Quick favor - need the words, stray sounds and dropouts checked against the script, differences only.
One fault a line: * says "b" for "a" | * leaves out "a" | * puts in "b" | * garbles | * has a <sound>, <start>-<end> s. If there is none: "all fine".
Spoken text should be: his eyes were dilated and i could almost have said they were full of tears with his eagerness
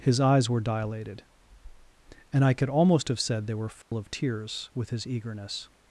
* has a dropout, 3.8-3.9 s